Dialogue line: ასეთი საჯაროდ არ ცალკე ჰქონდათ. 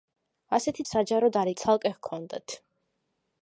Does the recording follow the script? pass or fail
pass